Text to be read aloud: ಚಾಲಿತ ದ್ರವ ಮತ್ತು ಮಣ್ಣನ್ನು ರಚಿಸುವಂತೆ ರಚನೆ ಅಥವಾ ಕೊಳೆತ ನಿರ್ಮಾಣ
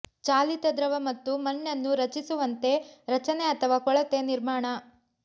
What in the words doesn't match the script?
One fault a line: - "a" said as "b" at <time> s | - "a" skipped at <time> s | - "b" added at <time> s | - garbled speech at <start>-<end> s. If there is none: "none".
none